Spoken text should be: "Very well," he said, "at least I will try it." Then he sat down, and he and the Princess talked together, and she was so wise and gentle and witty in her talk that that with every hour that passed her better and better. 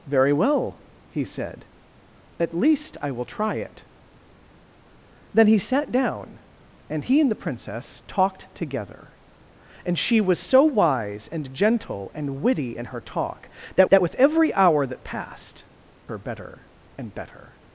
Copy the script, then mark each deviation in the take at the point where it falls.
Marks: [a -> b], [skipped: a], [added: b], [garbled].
"Very well," he said, "at least I will try it." Then he sat down, and he and the Princess talked together, and she was so wise and gentle and witty in her talk that that with every hour that passed her better and better.